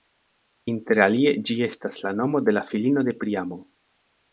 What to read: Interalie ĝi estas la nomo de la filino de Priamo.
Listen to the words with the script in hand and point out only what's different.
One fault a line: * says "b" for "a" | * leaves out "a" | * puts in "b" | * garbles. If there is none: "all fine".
all fine